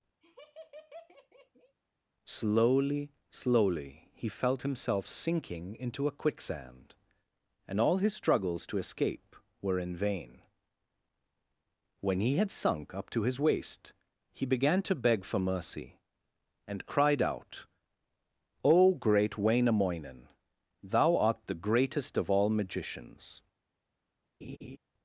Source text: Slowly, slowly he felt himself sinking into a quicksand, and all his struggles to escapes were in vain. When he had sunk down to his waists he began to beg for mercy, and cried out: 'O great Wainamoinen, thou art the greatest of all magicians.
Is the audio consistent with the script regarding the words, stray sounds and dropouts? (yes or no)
no